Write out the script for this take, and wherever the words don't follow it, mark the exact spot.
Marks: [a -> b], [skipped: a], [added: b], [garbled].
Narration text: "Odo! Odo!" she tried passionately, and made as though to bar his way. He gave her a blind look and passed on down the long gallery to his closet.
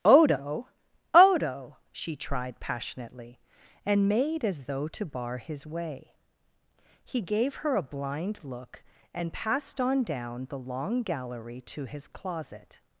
"Odo! Odo!" she tried passionately, and made as though to bar his way. He gave her a blind look and passed on down the long gallery to his closet.